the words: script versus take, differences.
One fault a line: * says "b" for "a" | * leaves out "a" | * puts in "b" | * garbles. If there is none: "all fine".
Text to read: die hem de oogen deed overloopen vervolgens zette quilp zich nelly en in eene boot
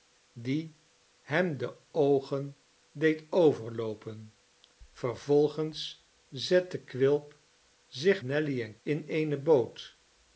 all fine